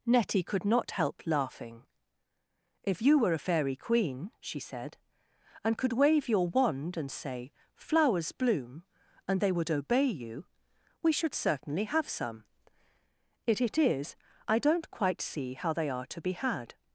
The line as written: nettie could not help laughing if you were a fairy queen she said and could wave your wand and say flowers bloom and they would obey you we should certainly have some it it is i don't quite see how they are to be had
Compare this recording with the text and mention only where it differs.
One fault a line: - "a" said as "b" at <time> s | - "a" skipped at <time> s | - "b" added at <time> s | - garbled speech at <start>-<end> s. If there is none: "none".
none